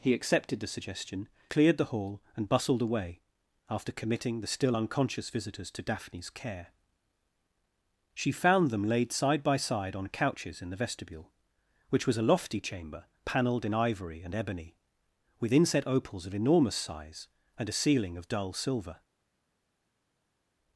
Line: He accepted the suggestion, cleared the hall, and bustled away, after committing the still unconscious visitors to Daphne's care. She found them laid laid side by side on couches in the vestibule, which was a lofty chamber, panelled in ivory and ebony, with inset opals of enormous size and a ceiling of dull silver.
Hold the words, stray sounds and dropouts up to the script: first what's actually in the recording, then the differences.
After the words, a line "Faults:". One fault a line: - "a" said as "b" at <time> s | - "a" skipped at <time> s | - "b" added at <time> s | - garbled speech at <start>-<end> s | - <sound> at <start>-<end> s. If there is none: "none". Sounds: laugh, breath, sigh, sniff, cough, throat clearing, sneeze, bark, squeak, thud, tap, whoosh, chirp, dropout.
He accepted the suggestion, cleared the hall, and bustled away, after committing the still unconscious visitors to Daphne's care. She found them laid side by side on couches in the vestibule, which was a lofty chamber, panelled in ivory and ebony, with inset opals of enormous size and a ceiling of dull silver.
Faults:
- "laid" skipped at 9.1 s